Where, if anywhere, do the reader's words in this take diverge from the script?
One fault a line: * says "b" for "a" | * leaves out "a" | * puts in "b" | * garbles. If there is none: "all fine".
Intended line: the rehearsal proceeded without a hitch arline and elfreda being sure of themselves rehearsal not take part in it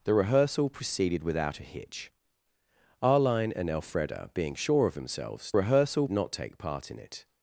all fine